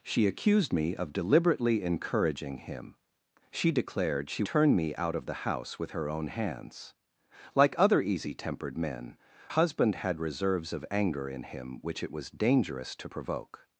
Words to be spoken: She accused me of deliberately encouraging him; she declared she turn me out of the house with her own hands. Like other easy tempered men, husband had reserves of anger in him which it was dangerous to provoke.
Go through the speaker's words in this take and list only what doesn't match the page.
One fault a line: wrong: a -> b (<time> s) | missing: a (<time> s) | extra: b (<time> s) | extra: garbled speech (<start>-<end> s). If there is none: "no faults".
no faults